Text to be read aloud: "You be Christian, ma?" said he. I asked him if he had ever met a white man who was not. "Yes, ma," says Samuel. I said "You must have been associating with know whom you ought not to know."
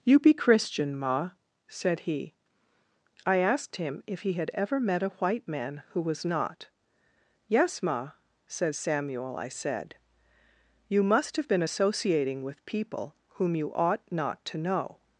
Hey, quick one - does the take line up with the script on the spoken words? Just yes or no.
no